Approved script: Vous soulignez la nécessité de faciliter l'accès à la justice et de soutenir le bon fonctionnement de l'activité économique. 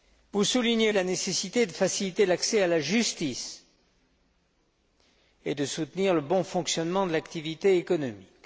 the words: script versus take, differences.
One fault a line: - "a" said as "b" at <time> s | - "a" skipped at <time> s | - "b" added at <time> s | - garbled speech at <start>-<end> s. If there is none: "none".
none